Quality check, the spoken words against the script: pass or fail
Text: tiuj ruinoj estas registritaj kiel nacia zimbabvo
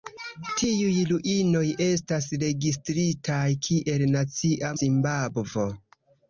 pass